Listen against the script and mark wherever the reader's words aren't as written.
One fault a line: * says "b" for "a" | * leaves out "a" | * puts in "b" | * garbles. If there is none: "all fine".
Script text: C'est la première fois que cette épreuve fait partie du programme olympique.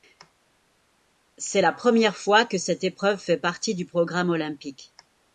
all fine